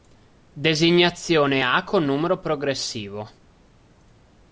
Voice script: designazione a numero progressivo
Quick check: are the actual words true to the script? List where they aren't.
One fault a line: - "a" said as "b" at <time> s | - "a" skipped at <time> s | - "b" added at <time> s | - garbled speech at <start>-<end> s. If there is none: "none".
- "con" added at 1.8 s